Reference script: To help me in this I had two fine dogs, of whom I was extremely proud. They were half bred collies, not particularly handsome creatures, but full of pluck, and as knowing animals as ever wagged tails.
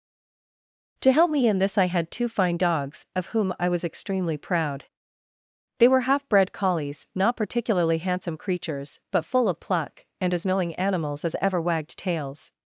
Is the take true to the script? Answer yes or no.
yes